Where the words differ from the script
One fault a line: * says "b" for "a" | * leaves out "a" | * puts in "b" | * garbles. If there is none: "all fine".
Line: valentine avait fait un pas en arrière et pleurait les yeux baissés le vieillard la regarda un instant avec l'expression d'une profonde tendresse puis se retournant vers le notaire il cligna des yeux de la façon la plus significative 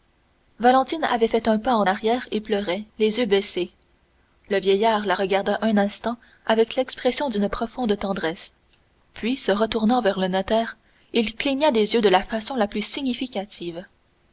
all fine